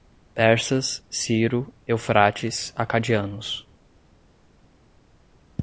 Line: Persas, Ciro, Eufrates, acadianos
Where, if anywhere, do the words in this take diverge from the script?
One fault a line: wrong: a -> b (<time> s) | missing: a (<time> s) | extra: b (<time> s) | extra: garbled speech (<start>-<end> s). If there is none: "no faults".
no faults